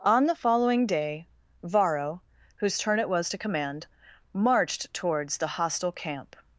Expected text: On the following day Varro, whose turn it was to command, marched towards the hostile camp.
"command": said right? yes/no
yes